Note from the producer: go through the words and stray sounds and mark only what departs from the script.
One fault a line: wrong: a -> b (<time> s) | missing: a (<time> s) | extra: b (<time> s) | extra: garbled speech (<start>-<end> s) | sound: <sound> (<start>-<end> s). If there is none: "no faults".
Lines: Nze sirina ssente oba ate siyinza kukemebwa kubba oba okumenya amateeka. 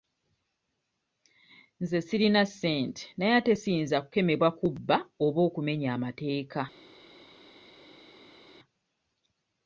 wrong: oba -> naye (3.2 s)